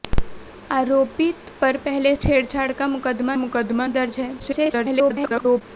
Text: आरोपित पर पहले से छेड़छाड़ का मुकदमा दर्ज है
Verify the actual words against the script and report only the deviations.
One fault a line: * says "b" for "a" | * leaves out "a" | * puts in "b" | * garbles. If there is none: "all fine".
* leaves out "से"
* puts in "मुकदमा"
* garbles